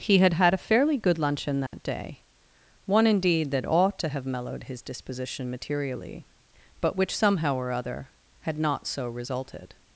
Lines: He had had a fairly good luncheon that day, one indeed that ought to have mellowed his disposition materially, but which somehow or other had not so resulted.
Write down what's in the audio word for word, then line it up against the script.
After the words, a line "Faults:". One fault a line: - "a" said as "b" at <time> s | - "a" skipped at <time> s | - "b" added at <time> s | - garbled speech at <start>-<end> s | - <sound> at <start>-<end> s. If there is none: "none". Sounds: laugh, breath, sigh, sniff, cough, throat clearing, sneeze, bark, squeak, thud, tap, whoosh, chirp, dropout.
He had had a fairly good luncheon that day, one indeed that ought to have mellowed his disposition materially, but which somehow or other had not so resulted.
Faults:
- dropout at 1.7-1.7 s